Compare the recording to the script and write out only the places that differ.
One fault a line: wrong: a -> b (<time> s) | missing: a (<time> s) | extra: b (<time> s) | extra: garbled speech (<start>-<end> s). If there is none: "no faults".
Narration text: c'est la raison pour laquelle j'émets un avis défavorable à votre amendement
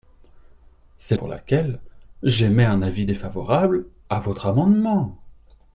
missing: la raison (1.1 s)